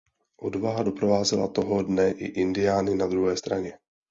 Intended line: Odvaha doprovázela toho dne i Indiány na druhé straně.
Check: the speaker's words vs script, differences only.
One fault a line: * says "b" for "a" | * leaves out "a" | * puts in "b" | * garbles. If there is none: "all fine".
all fine